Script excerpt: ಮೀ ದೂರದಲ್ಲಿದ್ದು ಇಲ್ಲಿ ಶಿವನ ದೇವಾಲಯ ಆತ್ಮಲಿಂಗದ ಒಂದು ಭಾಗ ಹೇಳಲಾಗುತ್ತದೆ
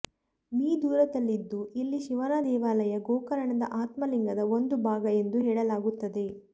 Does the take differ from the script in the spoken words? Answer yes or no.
yes